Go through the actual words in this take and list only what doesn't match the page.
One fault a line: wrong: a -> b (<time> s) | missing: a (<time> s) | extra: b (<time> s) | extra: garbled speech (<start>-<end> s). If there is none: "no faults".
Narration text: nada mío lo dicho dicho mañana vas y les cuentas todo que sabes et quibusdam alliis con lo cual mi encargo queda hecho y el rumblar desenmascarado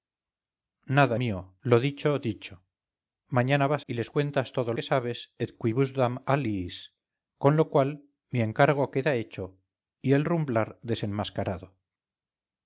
no faults